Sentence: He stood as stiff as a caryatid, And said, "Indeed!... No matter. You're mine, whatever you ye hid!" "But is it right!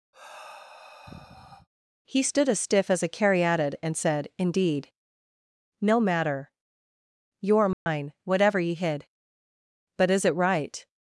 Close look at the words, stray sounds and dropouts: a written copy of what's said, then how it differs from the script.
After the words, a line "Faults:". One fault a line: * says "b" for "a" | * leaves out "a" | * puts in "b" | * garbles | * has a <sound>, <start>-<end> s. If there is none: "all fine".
He stood as stiff as a caryatid, And said, "Indeed!... No matter. You're mine, whatever ye hid!" "But is it right!
Faults:
* has a sigh, 0.1-1.7 s
* has a dropout, 7.7-7.9 s
* leaves out "you"